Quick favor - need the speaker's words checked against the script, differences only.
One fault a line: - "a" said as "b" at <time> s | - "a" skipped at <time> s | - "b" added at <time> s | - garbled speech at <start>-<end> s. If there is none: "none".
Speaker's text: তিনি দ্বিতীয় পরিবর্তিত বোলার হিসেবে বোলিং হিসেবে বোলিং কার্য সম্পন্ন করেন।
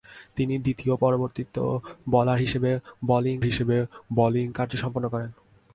none